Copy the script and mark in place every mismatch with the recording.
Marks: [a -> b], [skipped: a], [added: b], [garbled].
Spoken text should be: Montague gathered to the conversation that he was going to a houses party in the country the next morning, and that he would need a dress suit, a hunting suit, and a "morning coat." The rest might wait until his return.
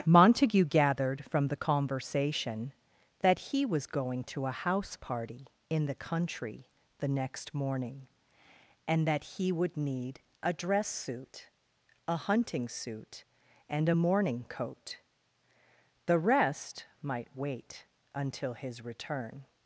Montague gathered [to -> from] the conversation that he was going to a [houses -> house] party in the country the next morning, and that he would need a dress suit, a hunting suit, and a "morning coat." The rest might wait until his return.